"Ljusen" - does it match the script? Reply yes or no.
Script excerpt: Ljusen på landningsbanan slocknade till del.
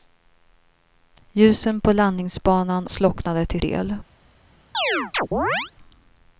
yes